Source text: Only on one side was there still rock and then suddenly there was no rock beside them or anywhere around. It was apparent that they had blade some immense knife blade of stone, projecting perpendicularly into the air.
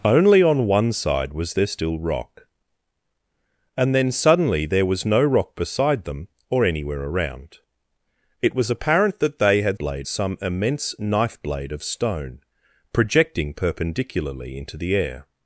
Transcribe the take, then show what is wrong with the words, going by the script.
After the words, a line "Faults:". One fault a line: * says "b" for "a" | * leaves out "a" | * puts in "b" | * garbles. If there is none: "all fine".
Only on one side was there still rock and then suddenly there was no rock beside them or anywhere around. It was apparent that they had blade some immense knife blade of stone, projecting perpendicularly into the air.
Faults:
all fine